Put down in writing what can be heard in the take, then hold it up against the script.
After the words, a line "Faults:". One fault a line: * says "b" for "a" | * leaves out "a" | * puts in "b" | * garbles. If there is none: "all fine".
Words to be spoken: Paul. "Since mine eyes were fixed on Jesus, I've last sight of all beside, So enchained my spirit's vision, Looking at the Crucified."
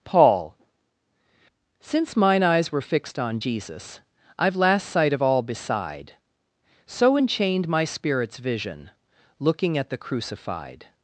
Paul. "Since mine eyes were fixed on Jesus, I've last sight of all beside, So enchained my spirit's vision, Looking at the Crucified."
Faults:
all fine